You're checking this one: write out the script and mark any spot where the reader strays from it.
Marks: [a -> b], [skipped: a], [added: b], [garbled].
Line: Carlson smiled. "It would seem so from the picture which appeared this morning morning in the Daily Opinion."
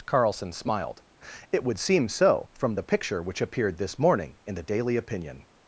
Carlson smiled. "It would seem so from the picture which appeared this morning [skipped: morning] in the Daily Opinion."